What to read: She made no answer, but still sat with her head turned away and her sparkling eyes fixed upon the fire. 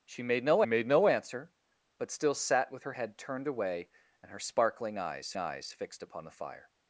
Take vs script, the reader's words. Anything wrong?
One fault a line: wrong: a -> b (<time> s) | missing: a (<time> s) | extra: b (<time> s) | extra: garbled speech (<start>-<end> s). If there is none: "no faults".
extra: made no (0.6 s)
extra: eyes (5.4 s)